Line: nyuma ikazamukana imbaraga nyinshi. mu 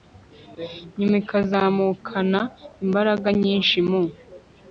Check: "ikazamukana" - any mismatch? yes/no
no